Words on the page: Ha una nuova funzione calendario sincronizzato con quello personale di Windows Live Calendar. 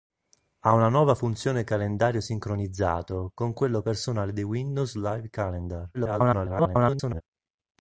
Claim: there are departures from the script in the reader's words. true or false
true